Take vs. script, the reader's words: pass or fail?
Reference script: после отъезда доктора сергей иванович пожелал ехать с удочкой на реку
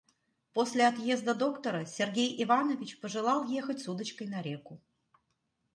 pass